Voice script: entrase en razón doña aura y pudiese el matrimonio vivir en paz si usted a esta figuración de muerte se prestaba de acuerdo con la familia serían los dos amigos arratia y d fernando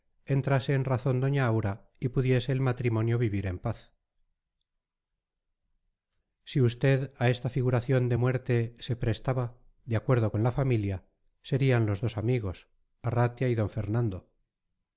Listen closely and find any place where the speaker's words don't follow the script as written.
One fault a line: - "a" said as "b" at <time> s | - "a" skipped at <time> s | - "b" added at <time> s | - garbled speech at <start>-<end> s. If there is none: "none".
none